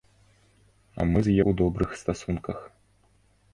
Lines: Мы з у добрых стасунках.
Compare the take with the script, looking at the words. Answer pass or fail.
pass